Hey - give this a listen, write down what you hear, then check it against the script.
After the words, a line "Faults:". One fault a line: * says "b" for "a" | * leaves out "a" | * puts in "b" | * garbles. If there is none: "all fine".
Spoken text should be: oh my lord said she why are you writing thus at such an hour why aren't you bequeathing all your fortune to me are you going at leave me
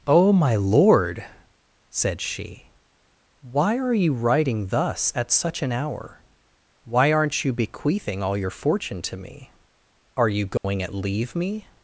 oh my lord said she why are you writing thus at such an hour why aren't you bequeathing all your fortune to me are you going at leave me
Faults:
all fine